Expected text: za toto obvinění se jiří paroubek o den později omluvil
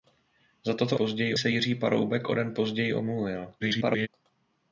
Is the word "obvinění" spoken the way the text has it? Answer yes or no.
no